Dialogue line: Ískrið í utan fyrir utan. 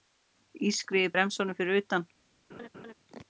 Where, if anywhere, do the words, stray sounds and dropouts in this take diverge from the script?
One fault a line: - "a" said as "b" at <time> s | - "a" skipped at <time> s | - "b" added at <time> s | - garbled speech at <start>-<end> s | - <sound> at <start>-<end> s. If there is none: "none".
- "utan" said as "bremsunum" at 1.1 s
- laugh at 2.5-2.9 s